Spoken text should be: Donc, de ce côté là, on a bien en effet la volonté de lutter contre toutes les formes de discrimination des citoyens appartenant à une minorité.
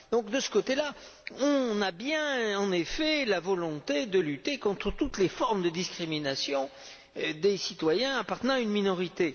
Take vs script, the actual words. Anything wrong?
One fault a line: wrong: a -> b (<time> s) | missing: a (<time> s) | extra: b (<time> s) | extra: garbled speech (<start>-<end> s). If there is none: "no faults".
no faults